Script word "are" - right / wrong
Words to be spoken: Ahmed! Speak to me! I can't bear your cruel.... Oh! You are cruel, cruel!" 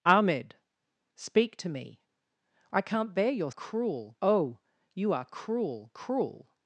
right